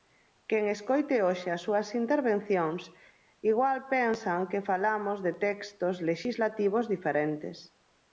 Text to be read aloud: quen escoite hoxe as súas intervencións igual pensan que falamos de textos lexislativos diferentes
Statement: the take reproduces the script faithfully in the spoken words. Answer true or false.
true